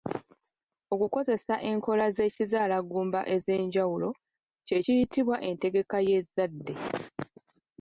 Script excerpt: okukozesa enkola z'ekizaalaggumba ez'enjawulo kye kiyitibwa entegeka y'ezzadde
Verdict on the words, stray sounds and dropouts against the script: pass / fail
pass